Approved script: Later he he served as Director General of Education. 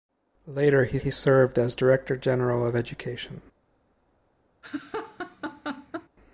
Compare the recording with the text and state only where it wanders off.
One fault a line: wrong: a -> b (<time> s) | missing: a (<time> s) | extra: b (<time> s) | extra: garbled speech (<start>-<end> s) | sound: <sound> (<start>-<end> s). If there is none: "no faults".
sound: laugh (4.6-6.1 s)